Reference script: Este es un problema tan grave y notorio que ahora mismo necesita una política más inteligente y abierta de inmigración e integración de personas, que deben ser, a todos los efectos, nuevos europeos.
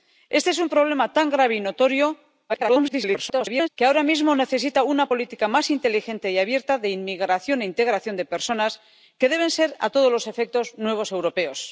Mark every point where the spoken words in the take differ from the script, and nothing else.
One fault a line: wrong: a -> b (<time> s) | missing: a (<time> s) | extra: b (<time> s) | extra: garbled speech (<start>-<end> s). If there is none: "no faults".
extra: garbled speech (2.5-3.7 s)